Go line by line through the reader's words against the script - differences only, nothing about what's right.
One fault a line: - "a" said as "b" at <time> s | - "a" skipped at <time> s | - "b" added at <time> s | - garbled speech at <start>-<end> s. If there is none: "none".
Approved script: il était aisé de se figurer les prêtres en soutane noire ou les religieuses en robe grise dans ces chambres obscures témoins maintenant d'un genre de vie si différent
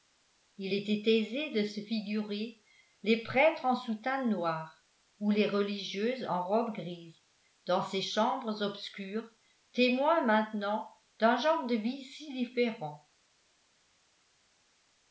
none